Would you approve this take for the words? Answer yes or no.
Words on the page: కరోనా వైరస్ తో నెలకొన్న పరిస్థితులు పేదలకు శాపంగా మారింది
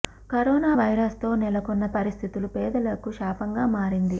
yes